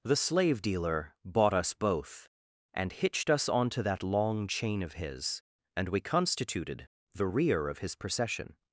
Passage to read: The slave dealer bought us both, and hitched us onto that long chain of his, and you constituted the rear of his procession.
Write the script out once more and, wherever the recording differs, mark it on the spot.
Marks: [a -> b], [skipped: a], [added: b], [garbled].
The slave dealer bought us both, and hitched us onto that long chain of his, and [you -> we] constituted the rear of his procession.